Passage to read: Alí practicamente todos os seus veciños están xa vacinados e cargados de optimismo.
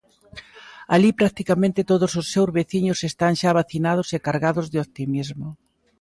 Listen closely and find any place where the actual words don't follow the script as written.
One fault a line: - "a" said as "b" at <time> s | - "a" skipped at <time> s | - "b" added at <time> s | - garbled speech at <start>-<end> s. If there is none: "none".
none